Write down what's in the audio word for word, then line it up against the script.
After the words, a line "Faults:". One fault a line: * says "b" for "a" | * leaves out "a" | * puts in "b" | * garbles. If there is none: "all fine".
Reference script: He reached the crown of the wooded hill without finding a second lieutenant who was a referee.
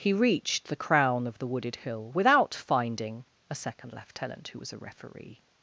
He reached the crown of the wooded hill without finding a second lieutenant who was a referee.
Faults:
all fine